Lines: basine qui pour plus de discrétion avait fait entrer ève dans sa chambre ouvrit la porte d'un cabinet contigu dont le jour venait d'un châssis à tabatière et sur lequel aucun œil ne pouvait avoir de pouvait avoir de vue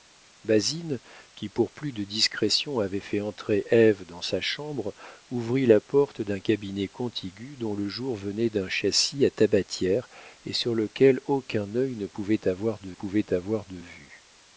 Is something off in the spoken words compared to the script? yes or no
no